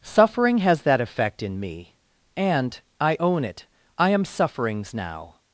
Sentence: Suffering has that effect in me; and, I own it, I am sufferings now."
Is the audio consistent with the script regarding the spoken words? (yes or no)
yes